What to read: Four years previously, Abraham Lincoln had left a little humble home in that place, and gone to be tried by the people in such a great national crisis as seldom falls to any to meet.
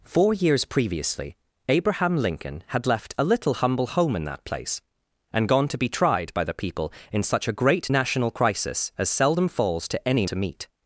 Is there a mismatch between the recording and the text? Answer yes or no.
no